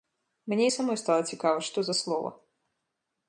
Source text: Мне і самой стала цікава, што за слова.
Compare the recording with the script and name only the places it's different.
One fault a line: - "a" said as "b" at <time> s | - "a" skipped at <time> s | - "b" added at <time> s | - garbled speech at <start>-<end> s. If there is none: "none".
none